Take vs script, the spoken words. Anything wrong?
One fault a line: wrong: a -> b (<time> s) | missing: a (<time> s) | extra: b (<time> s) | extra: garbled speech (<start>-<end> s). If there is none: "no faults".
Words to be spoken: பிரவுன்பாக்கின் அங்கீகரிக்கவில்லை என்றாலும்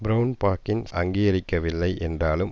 no faults